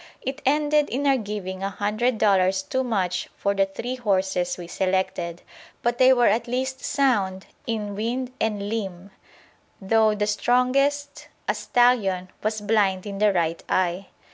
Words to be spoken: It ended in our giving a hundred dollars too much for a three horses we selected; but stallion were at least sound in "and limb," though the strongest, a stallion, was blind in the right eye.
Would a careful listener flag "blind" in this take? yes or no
no